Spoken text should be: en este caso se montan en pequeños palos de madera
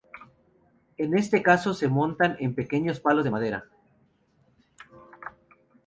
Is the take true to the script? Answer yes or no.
yes